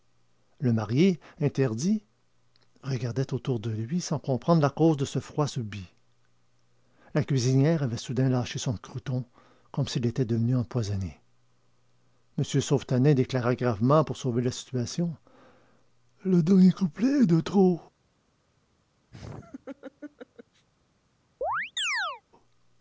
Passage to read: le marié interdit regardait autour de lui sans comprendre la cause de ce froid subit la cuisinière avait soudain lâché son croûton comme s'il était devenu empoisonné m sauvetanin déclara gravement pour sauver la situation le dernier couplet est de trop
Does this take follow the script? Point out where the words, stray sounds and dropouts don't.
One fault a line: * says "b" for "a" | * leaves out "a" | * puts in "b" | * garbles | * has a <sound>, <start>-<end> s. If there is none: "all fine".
* has a laugh, 19.1-20.7 s
* has a chirp, 21.4-22.2 s